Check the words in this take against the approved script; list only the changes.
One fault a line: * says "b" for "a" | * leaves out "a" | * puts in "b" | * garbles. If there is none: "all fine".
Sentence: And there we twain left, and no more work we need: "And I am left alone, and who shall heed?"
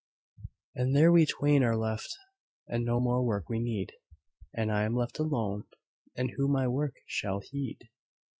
* puts in "are"
* puts in "my work"